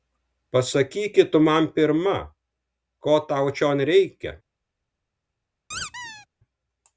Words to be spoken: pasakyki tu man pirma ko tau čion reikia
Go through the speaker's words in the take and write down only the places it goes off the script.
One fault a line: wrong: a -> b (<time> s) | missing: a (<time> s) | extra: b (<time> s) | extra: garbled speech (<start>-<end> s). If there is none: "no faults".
no faults